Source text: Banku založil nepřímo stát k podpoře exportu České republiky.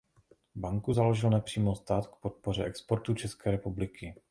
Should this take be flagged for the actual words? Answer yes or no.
no